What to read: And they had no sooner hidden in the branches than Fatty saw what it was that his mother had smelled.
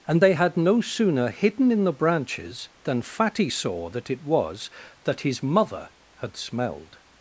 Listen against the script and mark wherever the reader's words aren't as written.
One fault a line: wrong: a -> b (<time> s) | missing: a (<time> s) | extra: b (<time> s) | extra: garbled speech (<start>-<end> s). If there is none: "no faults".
wrong: what -> that (3.9 s)